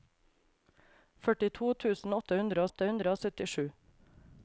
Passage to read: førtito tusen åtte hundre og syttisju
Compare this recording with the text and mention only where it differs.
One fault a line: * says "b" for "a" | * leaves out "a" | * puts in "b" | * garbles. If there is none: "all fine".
* puts in "åtte hundre"